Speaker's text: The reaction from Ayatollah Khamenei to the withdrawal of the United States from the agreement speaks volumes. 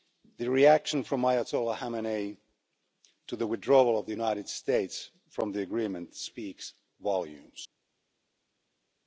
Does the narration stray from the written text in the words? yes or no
no